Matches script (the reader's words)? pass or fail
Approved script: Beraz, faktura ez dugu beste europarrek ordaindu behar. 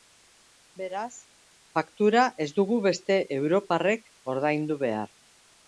pass